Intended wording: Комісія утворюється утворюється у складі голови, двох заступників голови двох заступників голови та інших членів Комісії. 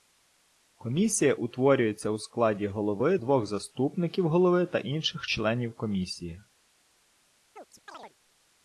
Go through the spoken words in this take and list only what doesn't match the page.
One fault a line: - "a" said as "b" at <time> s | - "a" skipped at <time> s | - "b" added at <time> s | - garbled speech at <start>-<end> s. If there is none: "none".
- "утворюється" skipped at 2.1 s
- "двох заступників голови" skipped at 4.7 s